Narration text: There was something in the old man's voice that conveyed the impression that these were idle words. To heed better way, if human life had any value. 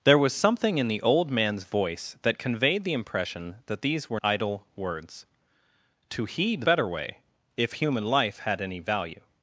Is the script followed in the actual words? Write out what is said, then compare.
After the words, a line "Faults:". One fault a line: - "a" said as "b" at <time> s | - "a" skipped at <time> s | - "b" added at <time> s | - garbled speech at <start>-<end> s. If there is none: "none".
There was something in the old man's voice that conveyed the impression that these were idle words. To heed better way, if human life had any value.
Faults:
none